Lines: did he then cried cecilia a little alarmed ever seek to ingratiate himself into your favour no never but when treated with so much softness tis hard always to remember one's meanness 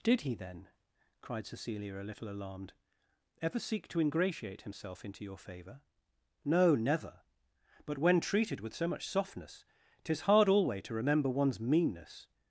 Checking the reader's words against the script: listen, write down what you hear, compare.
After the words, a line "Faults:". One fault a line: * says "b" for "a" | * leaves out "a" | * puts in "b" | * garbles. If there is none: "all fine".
did he then cried cecilia a little alarmed ever seek to ingratiate himself into your favour no never but when treated with so much softness tis hard alway to remember one's meanness
Faults:
* says "alway" for "always"